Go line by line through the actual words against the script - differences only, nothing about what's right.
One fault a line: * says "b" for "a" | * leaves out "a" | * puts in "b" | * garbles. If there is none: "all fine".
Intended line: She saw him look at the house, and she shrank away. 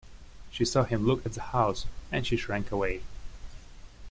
all fine